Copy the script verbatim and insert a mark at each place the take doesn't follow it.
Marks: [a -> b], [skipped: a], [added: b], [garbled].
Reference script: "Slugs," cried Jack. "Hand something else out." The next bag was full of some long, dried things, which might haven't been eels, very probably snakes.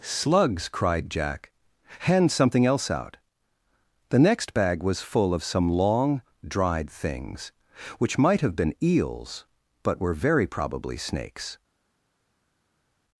"Slugs," cried Jack. "Hand something else out." The next bag was full of some long, dried things, which might [haven't -> have] been eels, [added: but were] very probably snakes.